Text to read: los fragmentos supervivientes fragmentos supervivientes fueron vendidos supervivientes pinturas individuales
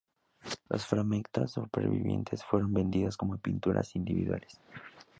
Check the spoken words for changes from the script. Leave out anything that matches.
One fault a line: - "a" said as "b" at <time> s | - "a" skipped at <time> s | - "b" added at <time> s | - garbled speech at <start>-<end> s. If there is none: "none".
- "fragmentos supervivientes" skipped at 2.4 s
- "supervivientes" said as "como" at 3.1 s